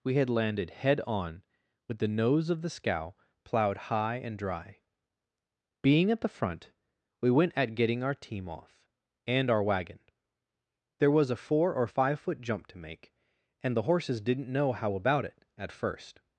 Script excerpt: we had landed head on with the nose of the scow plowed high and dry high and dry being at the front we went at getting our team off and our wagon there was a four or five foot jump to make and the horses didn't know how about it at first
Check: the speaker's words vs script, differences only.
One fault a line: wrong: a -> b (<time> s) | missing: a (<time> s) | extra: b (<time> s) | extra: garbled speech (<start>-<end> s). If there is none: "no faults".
missing: high and dry (4.8 s)